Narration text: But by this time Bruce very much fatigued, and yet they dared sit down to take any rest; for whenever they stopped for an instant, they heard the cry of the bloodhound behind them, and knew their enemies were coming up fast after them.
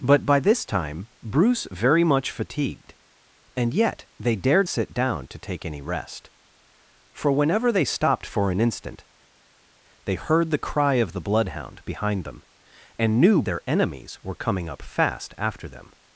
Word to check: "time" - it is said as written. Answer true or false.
true